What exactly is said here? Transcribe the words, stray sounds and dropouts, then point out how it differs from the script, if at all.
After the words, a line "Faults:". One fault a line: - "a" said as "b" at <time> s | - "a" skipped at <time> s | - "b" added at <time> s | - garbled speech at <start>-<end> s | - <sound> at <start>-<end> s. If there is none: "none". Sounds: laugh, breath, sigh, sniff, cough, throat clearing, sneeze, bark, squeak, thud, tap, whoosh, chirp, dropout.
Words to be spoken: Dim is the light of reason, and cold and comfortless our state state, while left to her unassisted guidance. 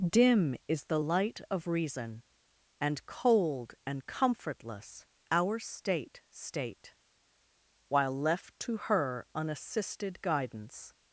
Dim is the light of reason, and cold and comfortless our state state, while left to her unassisted guidance.
Faults:
none